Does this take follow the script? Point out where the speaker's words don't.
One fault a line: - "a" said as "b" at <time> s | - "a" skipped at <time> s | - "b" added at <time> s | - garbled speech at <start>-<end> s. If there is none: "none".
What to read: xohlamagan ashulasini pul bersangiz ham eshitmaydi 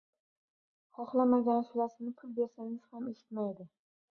none